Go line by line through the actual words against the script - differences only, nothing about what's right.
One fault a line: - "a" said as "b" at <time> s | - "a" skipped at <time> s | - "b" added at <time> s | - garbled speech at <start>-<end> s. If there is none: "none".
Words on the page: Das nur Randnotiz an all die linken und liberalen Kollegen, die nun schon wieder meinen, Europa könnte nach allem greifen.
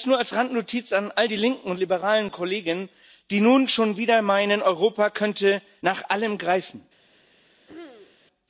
- "als" added at 0.2 s